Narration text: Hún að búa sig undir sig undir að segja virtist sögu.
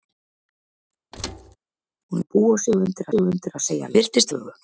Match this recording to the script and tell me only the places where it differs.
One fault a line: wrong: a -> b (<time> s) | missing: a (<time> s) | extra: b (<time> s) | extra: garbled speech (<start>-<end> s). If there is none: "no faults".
no faults